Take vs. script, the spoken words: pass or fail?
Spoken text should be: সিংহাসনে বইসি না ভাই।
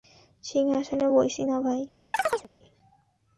pass